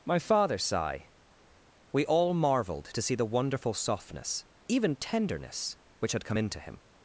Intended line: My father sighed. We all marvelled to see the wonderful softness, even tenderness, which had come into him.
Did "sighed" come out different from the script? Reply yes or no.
yes